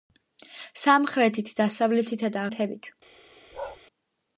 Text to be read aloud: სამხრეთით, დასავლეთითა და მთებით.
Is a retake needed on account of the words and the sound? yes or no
yes